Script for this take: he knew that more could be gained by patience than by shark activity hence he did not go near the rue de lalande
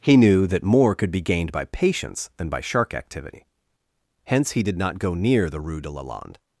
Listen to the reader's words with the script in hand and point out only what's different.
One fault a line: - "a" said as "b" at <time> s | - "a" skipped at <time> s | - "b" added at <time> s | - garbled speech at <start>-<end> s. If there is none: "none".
none